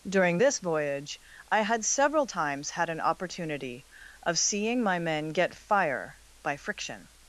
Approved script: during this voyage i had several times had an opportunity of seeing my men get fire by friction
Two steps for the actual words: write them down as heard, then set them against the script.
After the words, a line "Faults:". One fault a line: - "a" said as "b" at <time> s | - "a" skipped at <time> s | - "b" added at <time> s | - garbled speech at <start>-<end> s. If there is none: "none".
during this voyage i had several times had an opportunity of seeing my men get fire by friction
Faults:
none